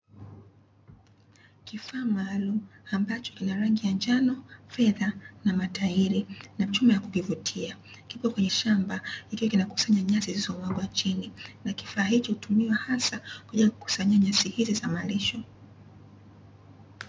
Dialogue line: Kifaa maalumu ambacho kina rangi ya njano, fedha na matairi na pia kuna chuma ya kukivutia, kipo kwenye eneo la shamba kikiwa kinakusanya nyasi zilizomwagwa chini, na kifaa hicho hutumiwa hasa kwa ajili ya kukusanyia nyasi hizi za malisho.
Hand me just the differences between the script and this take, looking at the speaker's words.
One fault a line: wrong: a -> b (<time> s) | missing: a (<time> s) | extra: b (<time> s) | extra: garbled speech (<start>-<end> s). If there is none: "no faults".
missing: pia kuna (6.7 s)
missing: eneo la (8.5 s)